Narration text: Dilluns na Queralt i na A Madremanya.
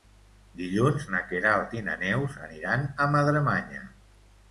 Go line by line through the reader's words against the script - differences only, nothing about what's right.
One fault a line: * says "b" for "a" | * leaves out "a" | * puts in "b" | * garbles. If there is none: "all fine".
* puts in "Neus aniran"